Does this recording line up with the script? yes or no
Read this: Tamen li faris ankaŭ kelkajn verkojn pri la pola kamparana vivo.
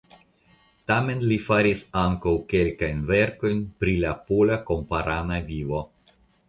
yes